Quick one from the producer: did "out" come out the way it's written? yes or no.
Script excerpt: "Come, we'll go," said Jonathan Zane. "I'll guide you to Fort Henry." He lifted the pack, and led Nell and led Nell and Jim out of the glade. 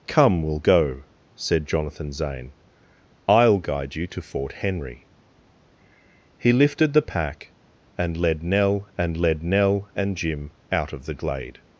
yes